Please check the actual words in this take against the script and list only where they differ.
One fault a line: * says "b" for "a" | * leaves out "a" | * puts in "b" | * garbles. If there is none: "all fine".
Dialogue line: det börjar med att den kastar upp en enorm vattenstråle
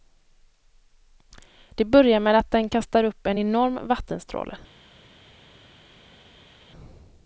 all fine